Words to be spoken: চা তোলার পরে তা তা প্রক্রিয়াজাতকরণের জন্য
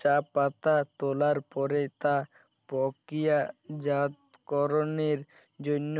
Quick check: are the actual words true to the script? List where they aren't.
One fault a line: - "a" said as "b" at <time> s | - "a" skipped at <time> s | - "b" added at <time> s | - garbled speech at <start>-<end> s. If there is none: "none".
- "পাতা" added at 0.3 s
- "তা" skipped at 2.1 s